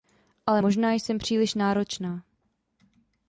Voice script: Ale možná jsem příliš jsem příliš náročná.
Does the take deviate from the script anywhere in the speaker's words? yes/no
yes